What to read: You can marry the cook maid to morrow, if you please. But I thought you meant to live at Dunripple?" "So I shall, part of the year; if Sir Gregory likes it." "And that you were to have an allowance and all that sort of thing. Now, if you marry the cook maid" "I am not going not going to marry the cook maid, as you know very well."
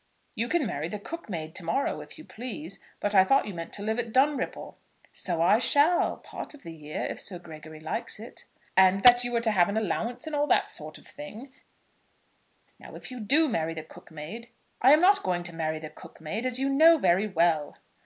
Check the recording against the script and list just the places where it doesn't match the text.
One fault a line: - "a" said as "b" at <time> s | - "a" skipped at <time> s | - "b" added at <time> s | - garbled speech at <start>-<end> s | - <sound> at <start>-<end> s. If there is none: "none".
- "do" added at 13.2 s
- "not going" skipped at 15.4 s